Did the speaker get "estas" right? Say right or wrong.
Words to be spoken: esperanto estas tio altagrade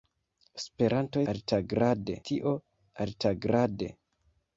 wrong